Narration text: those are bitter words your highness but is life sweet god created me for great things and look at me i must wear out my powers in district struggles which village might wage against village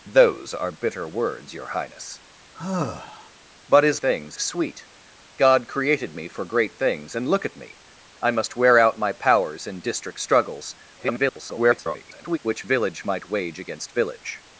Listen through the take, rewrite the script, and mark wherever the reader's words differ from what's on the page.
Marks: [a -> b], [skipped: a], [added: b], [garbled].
those are bitter words your highness but is [life -> things] sweet god created me for great things and look at me i must wear out my powers in district struggles [garbled] which village might wage against village